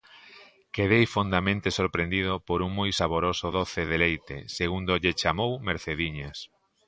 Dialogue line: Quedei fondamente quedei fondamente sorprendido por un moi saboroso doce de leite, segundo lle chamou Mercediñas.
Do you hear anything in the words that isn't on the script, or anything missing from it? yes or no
yes